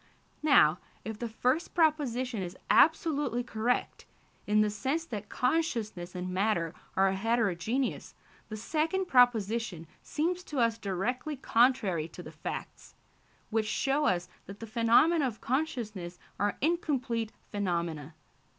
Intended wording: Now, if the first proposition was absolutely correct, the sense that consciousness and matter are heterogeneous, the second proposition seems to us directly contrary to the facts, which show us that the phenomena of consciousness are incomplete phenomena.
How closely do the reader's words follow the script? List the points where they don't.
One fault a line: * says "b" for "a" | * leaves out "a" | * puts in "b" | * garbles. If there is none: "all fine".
* says "is" for "was"
* puts in "in"